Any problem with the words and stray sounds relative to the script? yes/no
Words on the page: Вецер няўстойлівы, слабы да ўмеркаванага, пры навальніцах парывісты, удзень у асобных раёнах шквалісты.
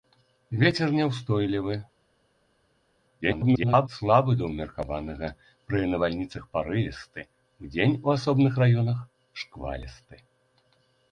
yes